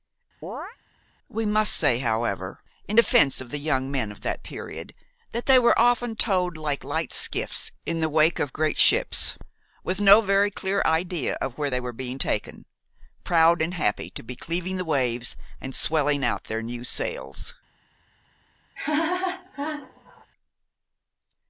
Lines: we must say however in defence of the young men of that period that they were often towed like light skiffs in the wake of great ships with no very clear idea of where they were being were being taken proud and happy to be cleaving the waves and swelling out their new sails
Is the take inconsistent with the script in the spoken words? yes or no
yes